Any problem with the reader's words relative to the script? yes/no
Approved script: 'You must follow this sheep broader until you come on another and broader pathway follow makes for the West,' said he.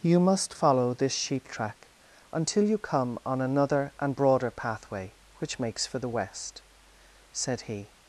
yes